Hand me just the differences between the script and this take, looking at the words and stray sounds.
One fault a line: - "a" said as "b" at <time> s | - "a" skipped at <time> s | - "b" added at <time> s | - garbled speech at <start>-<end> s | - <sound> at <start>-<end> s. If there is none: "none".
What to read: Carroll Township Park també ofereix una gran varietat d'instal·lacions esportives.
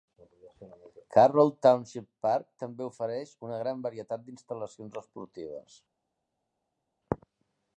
none